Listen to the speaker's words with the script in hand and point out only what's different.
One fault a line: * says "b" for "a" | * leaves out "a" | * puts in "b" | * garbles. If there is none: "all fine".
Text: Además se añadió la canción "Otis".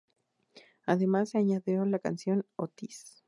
all fine